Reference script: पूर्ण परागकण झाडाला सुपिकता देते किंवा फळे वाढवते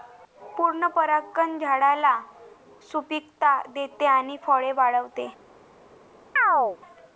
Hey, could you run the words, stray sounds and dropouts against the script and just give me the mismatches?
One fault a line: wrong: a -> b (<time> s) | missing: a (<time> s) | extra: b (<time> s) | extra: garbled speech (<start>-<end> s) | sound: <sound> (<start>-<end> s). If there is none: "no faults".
wrong: किंवा -> आणि (4.0 s)
sound: chirp (6.4-6.8 s)